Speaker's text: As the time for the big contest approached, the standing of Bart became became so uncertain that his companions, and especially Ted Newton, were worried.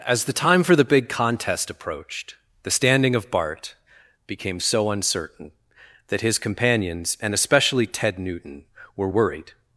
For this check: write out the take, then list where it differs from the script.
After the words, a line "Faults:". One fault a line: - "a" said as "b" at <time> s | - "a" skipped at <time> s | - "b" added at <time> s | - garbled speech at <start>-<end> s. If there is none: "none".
As the time for the big contest approached, the standing of Bart became so uncertain that his companions, and especially Ted Newton, were worried.
Faults:
- "became" skipped at 4.6 s